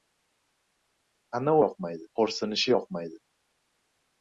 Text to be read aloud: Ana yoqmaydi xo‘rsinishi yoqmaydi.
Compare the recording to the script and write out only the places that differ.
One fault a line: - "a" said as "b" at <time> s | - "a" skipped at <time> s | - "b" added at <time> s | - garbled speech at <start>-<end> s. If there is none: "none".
none